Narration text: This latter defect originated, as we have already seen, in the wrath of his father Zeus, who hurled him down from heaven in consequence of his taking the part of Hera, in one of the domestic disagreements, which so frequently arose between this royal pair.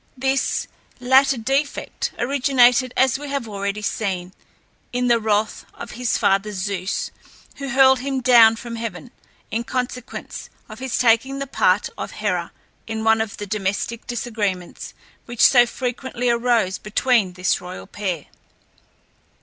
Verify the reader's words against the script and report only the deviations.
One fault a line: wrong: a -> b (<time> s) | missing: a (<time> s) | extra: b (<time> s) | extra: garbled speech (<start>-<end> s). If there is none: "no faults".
no faults